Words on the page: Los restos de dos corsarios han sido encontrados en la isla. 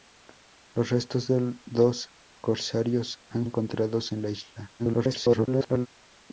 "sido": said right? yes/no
no